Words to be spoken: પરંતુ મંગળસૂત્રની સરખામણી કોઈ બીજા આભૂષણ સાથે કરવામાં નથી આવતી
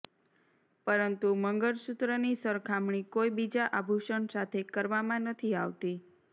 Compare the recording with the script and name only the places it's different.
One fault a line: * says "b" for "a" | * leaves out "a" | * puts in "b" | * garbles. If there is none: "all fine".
all fine